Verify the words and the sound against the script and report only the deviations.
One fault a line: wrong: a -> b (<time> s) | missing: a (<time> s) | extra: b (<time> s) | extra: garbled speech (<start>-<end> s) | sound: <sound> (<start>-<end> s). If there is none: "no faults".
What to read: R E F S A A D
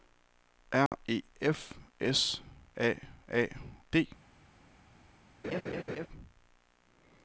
sound: dropout (0.9-0.9 s)
sound: laugh (5.4-6.1 s)